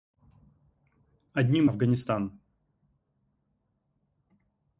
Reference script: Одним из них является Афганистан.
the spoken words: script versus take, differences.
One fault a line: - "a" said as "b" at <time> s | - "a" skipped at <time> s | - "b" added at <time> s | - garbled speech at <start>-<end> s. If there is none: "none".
- "из них является" skipped at 1.7 s